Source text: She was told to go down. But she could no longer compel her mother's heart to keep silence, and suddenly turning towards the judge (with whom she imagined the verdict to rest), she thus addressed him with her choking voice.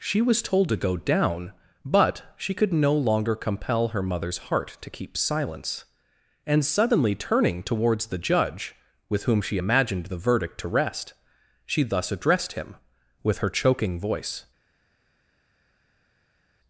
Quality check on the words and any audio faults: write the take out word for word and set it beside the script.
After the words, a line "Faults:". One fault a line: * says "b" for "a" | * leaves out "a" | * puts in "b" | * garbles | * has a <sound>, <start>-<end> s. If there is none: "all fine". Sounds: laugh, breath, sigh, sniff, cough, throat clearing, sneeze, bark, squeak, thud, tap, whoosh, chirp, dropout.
She was told to go down. But she could no longer compel her mother's heart to keep silence, and suddenly turning towards the judge (with whom she imagined the verdict to rest), she thus addressed him with her choking voice.
Faults:
all fine